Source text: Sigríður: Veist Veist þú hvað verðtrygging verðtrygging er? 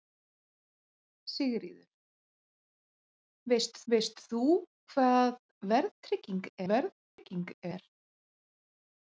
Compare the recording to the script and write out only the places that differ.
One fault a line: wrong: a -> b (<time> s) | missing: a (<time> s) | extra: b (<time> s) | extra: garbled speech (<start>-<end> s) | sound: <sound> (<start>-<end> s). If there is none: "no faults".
sound: dropout (7.0-7.2 s)